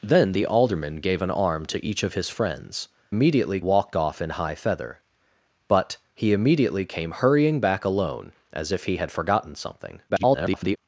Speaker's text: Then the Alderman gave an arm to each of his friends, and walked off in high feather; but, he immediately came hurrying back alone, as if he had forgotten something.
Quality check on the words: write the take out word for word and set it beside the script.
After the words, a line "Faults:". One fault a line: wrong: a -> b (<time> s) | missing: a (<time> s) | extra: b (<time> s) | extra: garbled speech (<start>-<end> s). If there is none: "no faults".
Then the Alderman gave an arm to each of his friends, immediately walked off in high feather; but, he immediately came hurrying back alone, as if he had forgotten something. [garbled]
Faults:
wrong: and -> immediately (3.1 s)
extra: garbled speech (10.1-10.8 s)